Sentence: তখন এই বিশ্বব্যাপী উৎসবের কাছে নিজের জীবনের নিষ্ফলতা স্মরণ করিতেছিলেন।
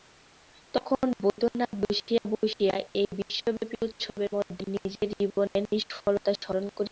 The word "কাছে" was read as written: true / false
false